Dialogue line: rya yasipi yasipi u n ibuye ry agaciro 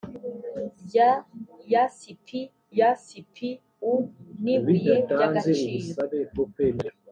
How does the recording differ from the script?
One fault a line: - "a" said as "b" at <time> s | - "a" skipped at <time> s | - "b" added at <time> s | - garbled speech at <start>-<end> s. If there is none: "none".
none